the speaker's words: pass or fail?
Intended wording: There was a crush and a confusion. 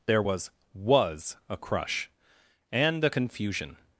fail